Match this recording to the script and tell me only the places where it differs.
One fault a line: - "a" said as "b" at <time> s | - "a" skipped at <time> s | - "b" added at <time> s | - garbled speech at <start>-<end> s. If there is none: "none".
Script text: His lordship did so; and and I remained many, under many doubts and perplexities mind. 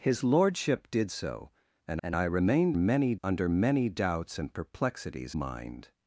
none